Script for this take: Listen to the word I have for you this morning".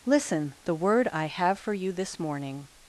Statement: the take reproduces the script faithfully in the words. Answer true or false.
false